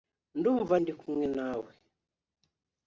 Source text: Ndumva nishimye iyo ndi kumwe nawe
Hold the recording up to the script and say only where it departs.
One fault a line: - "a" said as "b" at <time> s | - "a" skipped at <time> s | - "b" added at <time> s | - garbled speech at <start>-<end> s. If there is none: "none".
- "nishimye iyo" skipped at 0.8 s